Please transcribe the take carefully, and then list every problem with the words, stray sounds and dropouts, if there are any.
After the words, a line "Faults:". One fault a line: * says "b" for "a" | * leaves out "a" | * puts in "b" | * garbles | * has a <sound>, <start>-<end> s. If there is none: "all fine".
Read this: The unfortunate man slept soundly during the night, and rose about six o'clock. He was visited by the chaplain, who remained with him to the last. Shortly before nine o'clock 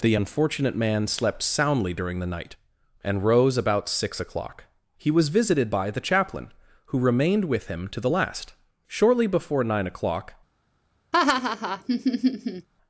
The unfortunate man slept soundly during the night, and rose about six o'clock. He was visited by the chaplain, who remained with him to the last. Shortly before nine o'clock
Faults:
* has a laugh, 11.1-12.7 s